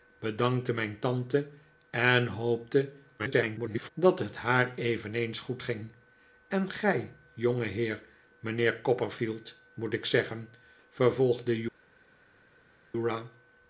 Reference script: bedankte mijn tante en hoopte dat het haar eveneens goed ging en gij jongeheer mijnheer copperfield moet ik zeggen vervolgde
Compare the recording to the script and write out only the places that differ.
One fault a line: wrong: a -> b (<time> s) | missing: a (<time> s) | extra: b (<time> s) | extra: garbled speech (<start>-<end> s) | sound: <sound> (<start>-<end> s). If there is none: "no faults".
extra: garbled speech (3.2-3.9 s)